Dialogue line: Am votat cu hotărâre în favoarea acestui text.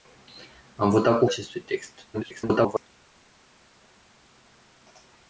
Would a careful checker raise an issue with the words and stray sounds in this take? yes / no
yes